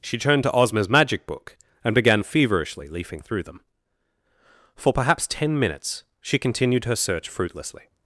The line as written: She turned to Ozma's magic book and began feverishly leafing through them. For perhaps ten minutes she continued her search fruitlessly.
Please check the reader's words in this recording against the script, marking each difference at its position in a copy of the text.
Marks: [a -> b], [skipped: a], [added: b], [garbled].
She turned to Ozma's magic book and began feverishly leafing through them. For perhaps ten minutes she continued her search fruitlessly.